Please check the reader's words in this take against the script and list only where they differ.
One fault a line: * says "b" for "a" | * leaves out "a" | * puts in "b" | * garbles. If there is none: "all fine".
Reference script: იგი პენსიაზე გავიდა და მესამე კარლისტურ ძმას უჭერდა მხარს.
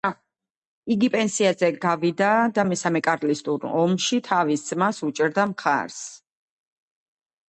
* puts in "ომში თავის"